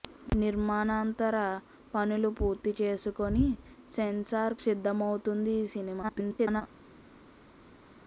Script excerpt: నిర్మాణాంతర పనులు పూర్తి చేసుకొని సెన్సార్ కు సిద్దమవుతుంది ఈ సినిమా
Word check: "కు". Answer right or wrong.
wrong